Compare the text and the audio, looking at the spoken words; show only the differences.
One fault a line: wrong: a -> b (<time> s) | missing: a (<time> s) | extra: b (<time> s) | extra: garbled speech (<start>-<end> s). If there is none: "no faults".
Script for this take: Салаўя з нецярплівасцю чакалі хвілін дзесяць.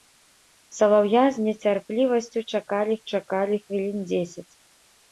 extra: чакалі (3.1 s)